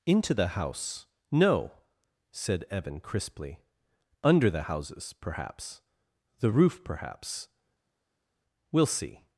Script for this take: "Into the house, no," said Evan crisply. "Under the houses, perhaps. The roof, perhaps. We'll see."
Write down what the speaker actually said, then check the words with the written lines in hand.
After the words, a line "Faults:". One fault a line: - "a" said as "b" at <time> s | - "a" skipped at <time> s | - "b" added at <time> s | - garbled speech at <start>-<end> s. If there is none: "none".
"Into the house, no," said Evan crisply. "Under the houses, perhaps. The roof, perhaps. We'll see."
Faults:
none